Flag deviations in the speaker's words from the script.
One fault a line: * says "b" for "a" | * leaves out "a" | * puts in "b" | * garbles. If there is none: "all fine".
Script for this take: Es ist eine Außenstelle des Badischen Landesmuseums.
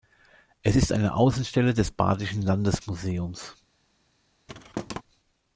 all fine